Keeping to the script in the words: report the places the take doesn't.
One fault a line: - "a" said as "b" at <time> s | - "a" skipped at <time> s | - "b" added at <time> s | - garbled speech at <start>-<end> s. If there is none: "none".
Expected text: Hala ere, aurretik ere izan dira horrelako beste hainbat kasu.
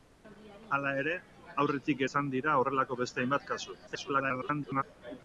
- "ere" skipped at 2.0 s
- garbled speech at 3.9-4.8 s